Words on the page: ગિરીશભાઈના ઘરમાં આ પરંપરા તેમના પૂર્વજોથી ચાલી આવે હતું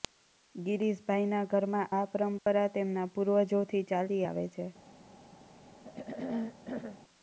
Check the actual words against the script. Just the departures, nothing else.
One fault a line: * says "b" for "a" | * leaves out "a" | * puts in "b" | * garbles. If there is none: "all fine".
* says "છે" for "હતું"